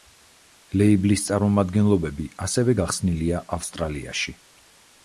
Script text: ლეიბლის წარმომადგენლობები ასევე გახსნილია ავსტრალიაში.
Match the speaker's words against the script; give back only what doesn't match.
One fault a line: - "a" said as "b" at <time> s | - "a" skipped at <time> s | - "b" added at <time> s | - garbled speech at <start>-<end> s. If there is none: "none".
none